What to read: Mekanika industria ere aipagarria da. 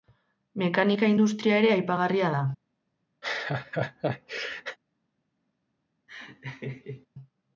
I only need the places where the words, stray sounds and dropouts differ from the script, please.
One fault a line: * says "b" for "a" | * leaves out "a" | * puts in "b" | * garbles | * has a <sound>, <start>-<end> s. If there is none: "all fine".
* has a laugh, 3.2-4.8 s
* has a laugh, 6.1-7.1 s